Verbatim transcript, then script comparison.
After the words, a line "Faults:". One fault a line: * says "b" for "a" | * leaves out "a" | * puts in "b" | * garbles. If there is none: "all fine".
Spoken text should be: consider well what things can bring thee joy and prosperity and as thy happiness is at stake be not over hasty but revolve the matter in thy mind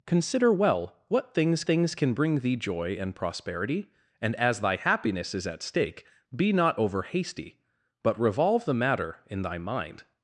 consider well what things things can bring thee joy and prosperity and as thy happiness is at stake be not over hasty but revolve the matter in thy mind
Faults:
* puts in "things"